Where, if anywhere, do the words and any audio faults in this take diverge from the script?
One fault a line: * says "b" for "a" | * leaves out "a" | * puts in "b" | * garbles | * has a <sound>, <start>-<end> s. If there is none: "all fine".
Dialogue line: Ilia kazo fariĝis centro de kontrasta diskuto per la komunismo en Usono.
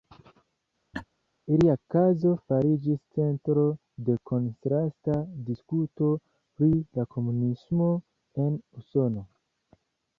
* has a laugh, 0.9-1.0 s
* says "pri" for "per"